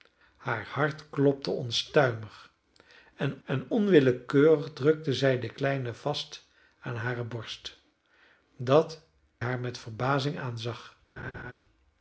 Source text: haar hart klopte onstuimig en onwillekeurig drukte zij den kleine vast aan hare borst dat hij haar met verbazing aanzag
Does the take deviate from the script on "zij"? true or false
false